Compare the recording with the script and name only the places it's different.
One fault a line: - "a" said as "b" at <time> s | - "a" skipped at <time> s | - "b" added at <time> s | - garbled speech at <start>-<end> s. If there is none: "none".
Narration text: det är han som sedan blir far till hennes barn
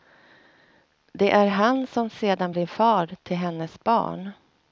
none